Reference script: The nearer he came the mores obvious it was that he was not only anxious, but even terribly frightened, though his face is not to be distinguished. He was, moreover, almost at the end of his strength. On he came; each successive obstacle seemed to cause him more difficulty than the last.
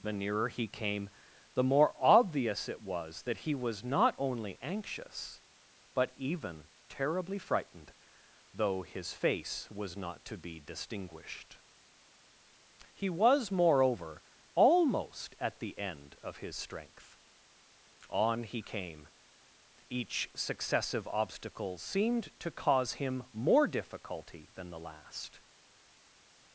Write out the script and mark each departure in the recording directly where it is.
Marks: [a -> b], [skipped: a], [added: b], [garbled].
The nearer he came the [mores -> more] obvious it was that he was not only anxious, but even terribly frightened, though his face [is -> was] not to be distinguished. He was, moreover, almost at the end of his strength. On he came; each successive obstacle seemed to cause him more difficulty than the last.